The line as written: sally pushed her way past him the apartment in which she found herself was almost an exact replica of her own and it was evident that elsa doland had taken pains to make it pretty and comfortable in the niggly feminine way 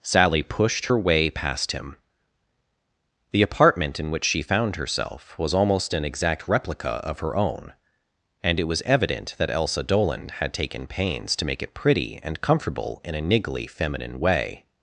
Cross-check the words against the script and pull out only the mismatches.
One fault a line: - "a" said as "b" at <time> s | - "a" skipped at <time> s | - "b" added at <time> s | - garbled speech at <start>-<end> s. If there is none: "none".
- "the" said as "a" at 13.1 s